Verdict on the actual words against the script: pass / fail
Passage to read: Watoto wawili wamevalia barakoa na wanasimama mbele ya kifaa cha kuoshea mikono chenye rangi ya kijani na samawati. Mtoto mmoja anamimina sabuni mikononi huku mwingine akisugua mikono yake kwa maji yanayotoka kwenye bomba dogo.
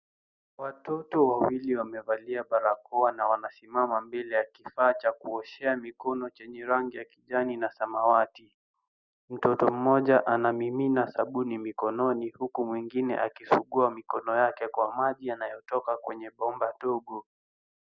pass